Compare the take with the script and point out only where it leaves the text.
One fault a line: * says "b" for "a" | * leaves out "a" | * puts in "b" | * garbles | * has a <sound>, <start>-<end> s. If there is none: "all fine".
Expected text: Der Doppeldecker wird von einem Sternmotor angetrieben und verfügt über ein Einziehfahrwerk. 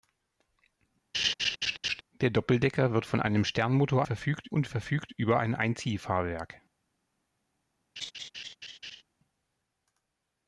* has a laugh, 1.1-2.0 s
* says "verfügt" for "angetrieben"
* has a laugh, 8.0-9.0 s